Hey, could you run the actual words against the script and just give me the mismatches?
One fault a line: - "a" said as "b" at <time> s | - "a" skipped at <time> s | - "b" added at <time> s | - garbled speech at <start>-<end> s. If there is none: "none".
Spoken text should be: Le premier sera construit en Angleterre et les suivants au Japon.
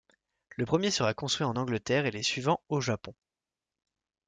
none